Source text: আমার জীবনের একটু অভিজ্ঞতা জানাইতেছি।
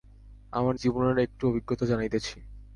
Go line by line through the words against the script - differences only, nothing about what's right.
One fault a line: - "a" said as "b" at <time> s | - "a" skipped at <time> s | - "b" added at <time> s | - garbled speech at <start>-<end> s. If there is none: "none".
none